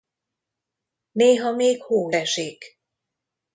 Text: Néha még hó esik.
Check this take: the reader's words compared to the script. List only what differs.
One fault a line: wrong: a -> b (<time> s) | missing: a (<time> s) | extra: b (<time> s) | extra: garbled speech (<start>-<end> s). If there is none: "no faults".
no faults